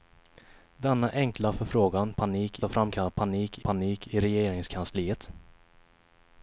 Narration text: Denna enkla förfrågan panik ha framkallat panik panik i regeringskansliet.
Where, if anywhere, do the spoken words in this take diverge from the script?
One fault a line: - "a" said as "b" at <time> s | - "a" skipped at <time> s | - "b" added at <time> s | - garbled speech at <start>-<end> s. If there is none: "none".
none